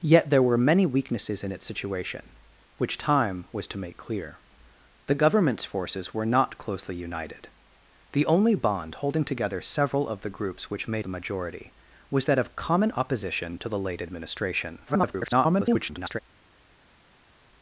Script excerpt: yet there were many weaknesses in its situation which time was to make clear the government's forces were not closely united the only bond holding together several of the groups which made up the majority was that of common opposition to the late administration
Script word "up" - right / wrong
wrong